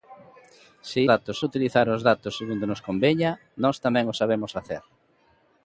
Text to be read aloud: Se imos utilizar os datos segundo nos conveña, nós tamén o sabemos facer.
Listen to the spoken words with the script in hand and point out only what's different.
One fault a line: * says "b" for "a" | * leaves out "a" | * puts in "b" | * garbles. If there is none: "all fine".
* says "datos" for "imos"